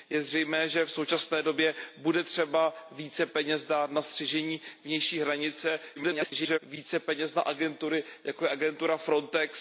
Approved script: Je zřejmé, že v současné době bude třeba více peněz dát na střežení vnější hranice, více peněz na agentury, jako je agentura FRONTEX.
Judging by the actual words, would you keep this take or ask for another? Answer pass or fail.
fail